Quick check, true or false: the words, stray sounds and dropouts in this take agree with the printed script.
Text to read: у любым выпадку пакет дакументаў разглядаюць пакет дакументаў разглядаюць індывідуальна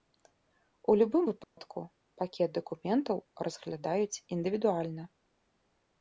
false